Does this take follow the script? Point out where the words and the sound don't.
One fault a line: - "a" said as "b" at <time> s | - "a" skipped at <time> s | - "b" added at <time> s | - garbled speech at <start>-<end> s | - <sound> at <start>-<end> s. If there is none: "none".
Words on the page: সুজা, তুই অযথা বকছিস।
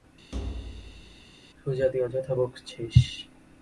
- thud at 0.3-1.3 s